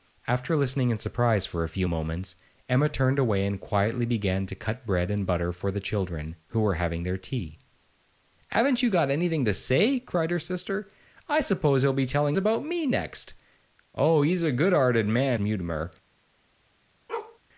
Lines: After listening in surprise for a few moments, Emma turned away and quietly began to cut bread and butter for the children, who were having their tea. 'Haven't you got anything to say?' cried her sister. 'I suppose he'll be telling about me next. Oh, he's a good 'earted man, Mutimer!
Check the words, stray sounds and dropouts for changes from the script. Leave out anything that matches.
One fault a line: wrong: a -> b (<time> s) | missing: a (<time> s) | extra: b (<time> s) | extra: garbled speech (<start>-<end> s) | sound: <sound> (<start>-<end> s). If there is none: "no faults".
sound: bark (17.1-17.4 s)